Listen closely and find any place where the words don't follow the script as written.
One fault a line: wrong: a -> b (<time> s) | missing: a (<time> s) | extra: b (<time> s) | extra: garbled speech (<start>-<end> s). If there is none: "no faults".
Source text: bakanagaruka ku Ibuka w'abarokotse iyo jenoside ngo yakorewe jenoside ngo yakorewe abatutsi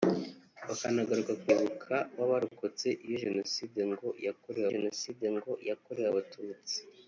no faults